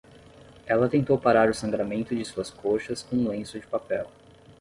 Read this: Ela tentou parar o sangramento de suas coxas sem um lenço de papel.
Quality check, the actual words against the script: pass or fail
fail